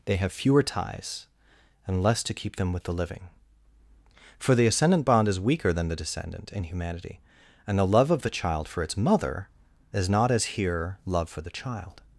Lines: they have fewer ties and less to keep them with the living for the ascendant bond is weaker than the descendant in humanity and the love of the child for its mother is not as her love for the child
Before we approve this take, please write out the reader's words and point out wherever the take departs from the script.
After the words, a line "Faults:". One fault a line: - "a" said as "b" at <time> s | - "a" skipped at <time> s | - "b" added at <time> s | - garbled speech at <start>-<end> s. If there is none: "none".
they have fewer ties and less to keep them with the living for the ascendant bond is weaker than the descendant in humanity and the love of the child for its mother is not as here love for the child
Faults:
- "her" said as "here" at 10.6 s